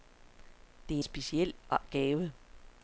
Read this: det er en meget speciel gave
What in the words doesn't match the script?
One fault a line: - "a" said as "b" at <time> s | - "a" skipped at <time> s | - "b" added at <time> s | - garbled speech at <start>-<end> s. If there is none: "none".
- "en meget" skipped at 1.0 s